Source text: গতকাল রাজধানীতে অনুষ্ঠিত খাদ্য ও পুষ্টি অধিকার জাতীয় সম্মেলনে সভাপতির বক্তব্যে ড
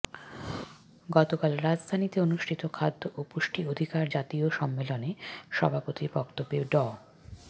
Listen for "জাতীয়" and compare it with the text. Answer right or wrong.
right